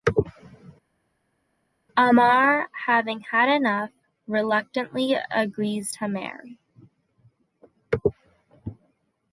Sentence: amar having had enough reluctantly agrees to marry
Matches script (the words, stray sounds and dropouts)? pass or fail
pass